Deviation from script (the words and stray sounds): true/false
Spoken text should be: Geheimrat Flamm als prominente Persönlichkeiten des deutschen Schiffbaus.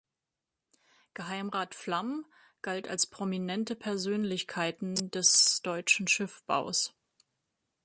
true